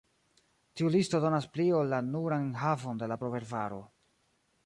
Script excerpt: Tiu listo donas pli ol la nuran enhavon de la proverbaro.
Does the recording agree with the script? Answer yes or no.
yes